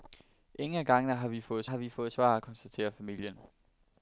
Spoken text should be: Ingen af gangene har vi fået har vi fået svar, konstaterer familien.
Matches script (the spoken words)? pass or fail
pass